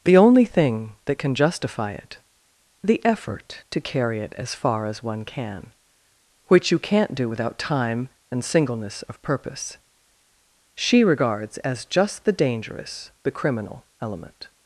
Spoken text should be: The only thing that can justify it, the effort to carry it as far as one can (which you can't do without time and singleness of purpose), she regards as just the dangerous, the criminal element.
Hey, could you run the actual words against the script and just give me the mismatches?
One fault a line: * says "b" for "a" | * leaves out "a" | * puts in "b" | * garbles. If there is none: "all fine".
all fine